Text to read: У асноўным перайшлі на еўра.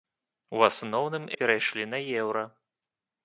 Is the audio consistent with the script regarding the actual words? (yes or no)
yes